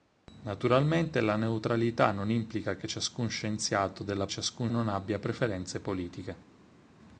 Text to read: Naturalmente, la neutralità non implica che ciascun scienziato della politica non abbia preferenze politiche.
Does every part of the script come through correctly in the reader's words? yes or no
no